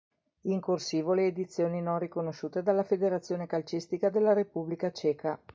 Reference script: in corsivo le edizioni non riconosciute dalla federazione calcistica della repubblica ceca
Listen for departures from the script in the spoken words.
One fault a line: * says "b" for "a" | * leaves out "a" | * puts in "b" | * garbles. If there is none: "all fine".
all fine